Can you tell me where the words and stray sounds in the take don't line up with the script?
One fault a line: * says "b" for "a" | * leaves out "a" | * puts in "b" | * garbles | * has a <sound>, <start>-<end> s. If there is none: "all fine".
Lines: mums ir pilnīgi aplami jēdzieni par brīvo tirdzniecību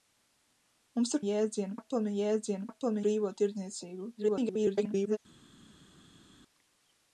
* says "jēdzieni" for "pilnīgi"
* says "aplami" for "par"
* garbles